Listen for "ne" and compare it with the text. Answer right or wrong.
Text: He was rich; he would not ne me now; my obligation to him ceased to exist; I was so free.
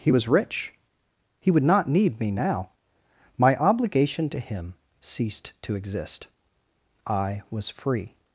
wrong